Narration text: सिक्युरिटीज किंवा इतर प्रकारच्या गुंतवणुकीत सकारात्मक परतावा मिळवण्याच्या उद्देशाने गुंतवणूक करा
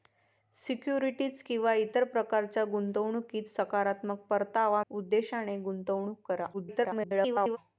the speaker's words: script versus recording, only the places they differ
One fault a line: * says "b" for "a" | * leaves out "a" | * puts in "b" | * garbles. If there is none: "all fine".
* leaves out "मिळवण्याच्या"
* garbles